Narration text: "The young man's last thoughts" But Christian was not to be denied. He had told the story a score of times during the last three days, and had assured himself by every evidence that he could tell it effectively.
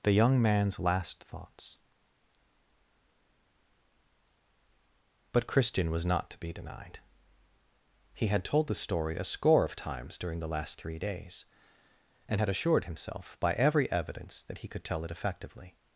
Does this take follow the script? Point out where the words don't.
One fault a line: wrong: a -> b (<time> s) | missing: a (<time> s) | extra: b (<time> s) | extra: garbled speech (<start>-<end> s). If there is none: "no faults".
no faults